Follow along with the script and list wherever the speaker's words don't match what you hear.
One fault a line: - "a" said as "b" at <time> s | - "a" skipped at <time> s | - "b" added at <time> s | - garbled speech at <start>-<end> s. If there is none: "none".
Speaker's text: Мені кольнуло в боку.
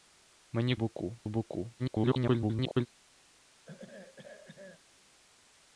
- "кольнуло" said as "боку" at 0.7 s
- garbled speech at 1.8-2.9 s